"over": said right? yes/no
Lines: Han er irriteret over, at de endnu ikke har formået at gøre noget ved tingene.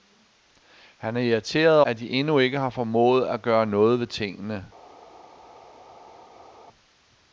no